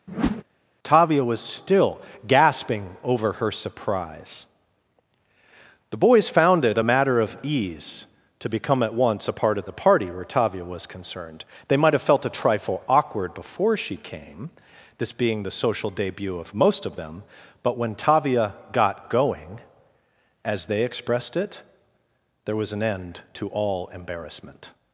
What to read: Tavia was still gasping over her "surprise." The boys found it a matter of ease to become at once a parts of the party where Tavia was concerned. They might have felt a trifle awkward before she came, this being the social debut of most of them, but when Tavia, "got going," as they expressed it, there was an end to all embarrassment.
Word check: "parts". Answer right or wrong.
wrong